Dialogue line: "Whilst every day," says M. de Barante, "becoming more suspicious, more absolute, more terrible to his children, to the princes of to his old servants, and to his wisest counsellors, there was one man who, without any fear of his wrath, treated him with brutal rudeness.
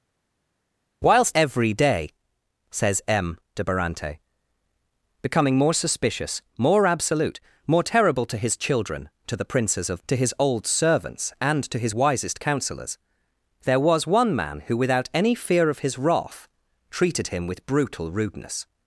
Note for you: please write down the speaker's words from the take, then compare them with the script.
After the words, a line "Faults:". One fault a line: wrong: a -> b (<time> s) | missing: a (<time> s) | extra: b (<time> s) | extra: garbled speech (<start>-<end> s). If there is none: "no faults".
"Whilst every day," says M. de Barante, "becoming more suspicious, more absolute, more terrible to his children, to the princes of to his old servants, and to his wisest counsellors, there was one man who, without any fear of his wrath, treated him with brutal rudeness.
Faults:
no faults